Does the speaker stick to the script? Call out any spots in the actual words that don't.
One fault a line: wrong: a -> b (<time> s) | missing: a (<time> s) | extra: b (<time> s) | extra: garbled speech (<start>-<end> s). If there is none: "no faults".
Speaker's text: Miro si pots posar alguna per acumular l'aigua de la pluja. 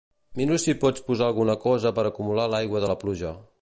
extra: cosa (1.7 s)